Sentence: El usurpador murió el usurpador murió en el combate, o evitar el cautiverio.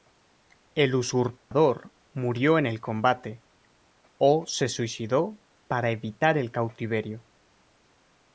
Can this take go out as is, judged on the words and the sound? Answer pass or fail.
fail